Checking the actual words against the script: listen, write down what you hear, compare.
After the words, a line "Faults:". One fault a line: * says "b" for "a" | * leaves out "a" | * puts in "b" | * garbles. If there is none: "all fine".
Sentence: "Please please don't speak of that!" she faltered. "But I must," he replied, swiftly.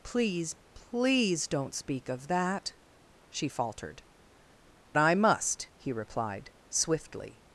"Please please don't speak of that!" she faltered. "I must," he replied, swiftly.
Faults:
* leaves out "But"